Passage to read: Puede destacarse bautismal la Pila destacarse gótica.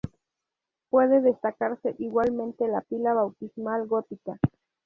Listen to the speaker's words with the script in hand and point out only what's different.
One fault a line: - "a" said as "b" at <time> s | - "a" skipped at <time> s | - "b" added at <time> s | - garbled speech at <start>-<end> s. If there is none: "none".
- "bautismal" said as "igualmente" at 2.0 s
- "destacarse" said as "bautismal" at 3.1 s